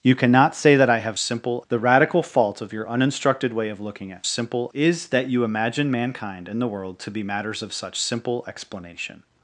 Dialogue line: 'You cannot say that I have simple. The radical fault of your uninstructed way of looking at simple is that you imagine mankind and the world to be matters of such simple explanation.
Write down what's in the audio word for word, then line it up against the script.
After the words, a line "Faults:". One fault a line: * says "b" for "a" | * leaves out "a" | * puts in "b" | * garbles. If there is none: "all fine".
'You cannot say that I have simple. The radical fault of your uninstructed way of looking at simple is that you imagine mankind and the world to be matters of such simple explanation.
Faults:
all fine